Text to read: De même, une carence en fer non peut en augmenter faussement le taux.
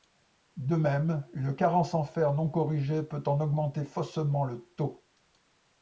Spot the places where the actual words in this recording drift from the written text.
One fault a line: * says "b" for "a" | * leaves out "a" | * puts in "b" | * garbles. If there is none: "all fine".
* puts in "corrigée"